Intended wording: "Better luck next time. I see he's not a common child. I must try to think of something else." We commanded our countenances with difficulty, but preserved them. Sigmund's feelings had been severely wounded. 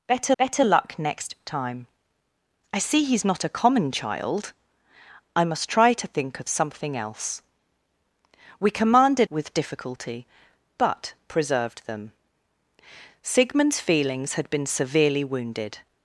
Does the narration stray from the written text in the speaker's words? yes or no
yes